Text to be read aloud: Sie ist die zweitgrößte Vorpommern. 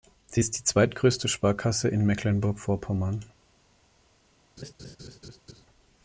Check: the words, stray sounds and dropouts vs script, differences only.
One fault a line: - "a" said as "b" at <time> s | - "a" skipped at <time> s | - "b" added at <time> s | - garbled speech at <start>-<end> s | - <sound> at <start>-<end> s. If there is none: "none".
- "Sparkasse in Mecklenburg" added at 1.3 s
- laugh at 4.6-5.6 s